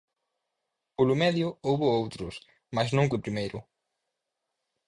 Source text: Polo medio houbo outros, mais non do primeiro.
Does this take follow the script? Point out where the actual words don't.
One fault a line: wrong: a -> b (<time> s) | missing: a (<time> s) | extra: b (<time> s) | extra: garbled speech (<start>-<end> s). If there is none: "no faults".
no faults